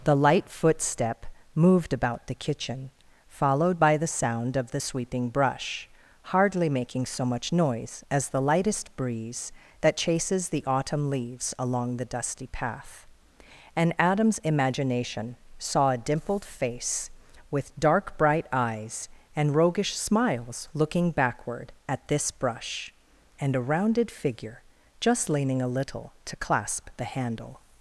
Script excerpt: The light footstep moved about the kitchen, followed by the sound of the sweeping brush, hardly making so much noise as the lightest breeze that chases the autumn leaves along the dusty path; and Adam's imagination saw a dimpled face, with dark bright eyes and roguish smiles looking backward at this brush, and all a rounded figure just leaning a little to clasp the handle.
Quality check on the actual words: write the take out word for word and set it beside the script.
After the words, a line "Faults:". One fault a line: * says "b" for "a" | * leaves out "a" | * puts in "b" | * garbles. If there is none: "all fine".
The light footstep moved about the kitchen, followed by the sound of the sweeping brush, hardly making so much noise as the lightest breeze that chases the autumn leaves along the dusty path; and Adam's imagination saw a dimpled face, with dark bright eyes and roguish smiles looking backward at this brush, and a rounded figure just leaning a little to clasp the handle.
Faults:
* leaves out "all"